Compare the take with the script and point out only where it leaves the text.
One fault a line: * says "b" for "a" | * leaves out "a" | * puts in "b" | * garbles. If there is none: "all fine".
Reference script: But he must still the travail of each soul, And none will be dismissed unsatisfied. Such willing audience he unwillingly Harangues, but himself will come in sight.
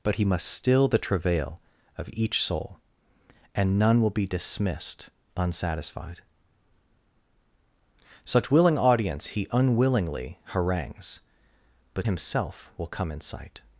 all fine